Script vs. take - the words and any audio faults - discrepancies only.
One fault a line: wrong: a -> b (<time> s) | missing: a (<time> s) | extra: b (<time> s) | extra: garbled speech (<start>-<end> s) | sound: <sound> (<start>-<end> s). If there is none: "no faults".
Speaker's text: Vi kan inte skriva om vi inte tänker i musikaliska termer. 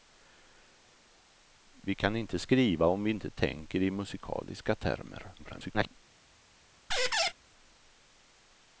extra: garbled speech (5.4-6.0 s)
sound: squeak (6.9-7.3 s)